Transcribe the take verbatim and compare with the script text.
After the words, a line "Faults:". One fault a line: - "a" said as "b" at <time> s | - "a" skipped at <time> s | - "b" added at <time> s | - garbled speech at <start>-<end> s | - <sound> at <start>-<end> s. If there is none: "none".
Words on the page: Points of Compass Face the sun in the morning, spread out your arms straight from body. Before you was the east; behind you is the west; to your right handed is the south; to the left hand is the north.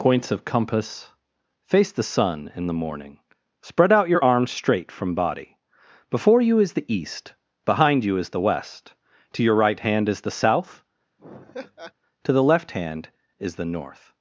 Points of Compass Face the sun in the morning, spread out your arms straight from body. Before you is the east; behind you is the west; to your right hand is the south; to the left hand is the north.
Faults:
- "was" said as "is" at 6.6 s
- "handed" said as "hand" at 9.8 s
- laugh at 11.2-11.9 s